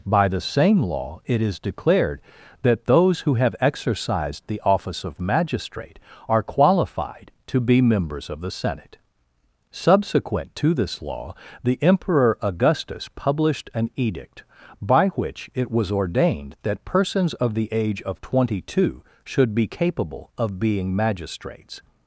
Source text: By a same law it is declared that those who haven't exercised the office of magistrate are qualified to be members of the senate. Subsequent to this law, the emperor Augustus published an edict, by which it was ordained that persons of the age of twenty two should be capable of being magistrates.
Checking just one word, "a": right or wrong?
wrong